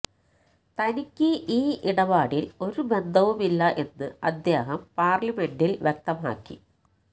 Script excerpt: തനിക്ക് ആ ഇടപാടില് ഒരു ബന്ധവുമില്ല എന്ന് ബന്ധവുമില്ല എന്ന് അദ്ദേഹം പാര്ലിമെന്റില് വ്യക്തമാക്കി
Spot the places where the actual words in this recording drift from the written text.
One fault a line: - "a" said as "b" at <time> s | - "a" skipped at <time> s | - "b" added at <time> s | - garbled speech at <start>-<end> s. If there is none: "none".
- "ആ" said as "ഈ" at 1.5 s
- "ബന്ധവുമില്ല എന്ന്" skipped at 4.1 s